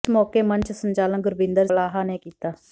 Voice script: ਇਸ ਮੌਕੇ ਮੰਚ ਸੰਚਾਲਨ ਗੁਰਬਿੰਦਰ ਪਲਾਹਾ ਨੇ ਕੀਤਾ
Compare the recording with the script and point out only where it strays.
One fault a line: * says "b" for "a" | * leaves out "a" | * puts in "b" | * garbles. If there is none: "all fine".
all fine